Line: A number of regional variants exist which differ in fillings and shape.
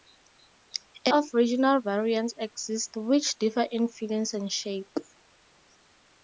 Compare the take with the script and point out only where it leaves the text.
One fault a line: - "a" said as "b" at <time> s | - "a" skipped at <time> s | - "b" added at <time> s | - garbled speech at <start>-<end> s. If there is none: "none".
- "number" skipped at 1.1 s